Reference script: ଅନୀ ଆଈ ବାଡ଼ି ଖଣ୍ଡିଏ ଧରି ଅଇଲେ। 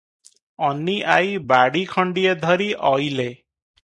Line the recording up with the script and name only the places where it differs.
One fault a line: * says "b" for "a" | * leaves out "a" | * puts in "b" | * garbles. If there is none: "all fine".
all fine